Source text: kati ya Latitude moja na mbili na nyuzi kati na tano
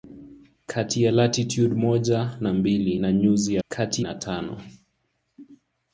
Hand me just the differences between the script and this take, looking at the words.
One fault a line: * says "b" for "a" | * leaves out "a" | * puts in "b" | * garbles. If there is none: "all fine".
all fine